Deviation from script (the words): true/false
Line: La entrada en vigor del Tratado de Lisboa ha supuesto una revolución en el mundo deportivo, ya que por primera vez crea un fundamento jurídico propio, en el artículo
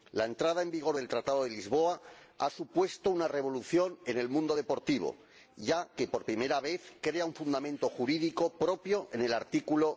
false